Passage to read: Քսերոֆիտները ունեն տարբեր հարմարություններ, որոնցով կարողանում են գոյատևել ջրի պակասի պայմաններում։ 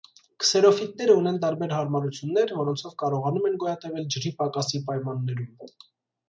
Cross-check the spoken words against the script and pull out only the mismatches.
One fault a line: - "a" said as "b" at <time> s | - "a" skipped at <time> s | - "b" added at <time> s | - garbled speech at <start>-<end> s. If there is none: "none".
none